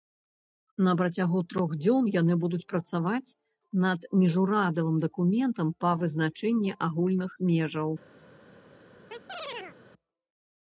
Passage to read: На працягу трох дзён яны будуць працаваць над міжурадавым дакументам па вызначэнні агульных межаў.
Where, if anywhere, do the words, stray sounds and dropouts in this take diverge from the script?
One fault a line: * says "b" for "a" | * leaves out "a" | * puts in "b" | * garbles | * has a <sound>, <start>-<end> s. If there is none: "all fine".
* has a chirp, 9.1-9.8 s